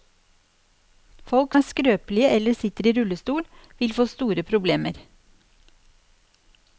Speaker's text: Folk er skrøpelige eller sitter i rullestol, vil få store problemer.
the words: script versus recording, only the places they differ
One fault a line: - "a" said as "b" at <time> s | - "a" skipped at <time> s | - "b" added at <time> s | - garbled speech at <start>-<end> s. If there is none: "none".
none